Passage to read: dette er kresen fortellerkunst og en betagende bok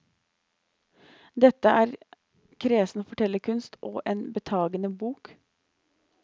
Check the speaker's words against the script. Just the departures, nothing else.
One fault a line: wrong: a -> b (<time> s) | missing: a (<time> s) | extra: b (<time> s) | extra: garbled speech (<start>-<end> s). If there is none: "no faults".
no faults